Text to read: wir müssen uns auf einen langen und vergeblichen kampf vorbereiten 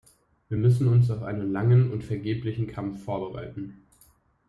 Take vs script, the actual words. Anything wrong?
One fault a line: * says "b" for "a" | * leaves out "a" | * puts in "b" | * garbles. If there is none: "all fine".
all fine